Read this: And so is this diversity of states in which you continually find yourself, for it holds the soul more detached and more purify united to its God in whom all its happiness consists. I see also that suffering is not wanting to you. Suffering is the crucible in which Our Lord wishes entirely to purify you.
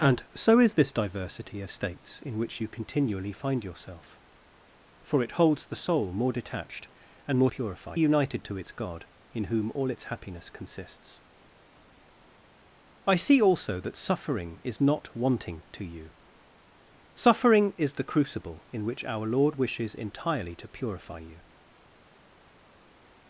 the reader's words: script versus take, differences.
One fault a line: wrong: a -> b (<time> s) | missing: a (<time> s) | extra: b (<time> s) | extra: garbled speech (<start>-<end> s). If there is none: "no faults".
no faults